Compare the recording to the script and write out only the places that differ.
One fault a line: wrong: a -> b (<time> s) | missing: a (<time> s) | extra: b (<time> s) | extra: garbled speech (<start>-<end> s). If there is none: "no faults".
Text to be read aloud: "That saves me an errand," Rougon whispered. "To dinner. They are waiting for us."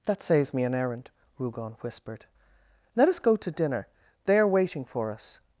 extra: Let us go (3.0 s)